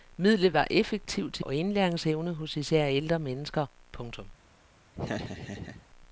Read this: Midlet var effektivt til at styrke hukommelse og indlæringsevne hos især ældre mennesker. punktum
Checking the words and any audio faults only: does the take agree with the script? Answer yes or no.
no